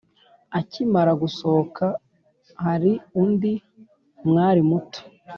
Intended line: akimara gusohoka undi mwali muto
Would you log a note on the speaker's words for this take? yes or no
yes